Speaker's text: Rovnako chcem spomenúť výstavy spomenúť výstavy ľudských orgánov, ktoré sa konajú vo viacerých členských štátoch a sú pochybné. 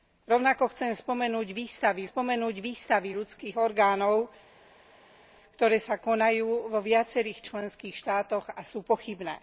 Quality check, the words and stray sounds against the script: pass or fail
pass